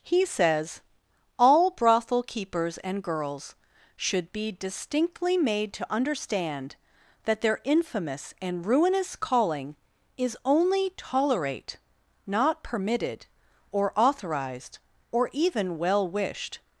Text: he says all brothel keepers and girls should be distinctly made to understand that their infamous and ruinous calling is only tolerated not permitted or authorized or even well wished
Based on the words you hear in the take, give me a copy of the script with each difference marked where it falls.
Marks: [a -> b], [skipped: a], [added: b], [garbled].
he says all brothel keepers and girls should be distinctly made to understand that their infamous and ruinous calling is only [tolerated -> tolerate] not permitted or authorized or even well wished